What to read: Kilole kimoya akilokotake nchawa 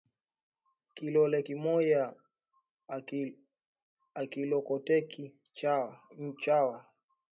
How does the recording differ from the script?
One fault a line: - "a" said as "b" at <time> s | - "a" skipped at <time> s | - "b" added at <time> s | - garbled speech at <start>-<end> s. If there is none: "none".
none